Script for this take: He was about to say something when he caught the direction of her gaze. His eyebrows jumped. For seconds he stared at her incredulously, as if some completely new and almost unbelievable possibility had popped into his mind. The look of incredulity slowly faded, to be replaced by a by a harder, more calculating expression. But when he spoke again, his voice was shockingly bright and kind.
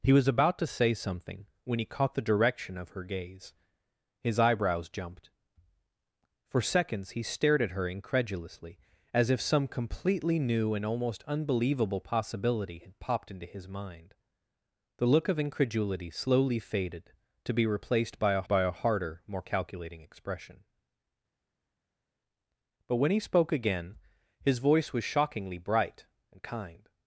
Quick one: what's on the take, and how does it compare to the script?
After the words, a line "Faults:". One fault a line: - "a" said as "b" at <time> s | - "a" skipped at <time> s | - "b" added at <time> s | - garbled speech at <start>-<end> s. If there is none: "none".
He was about to say something when he caught the direction of her gaze. His eyebrows jumped. For seconds he stared at her incredulously, as if some completely new and almost unbelievable possibility had popped into his mind. The look of incredulity slowly faded, to be replaced by a by a harder, more calculating expression. But when he spoke again, his voice was shockingly bright and kind.
Faults:
none